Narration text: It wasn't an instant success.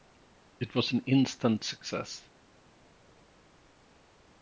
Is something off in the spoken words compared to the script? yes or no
yes